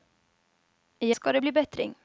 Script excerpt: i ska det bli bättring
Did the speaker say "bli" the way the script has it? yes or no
yes